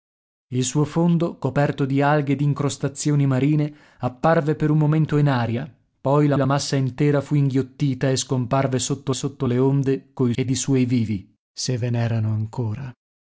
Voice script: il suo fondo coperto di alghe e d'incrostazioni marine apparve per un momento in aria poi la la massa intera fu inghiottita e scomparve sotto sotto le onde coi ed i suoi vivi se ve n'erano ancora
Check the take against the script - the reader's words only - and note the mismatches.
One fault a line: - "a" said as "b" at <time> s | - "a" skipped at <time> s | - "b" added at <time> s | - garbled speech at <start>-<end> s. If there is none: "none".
none